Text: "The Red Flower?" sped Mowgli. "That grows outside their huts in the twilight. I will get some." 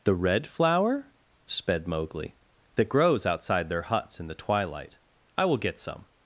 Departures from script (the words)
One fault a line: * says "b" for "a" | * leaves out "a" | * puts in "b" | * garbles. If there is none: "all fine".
all fine